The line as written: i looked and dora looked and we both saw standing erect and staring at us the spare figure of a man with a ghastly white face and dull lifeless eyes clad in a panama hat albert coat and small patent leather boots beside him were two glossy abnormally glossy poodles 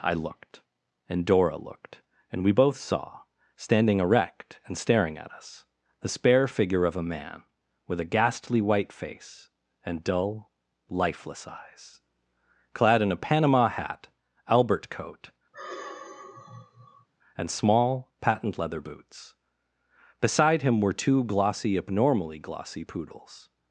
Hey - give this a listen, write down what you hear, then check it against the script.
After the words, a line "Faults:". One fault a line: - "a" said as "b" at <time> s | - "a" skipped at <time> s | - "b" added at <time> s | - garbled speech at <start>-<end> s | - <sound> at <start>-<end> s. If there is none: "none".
i looked and dora looked and we both saw standing erect and staring at us the spare figure of a man with a ghastly white face and dull lifeless eyes clad in a panama hat albert coat and small patent leather boots beside him were two glossy abnormally glossy poodles
Faults:
- sigh at 15.5-17.1 s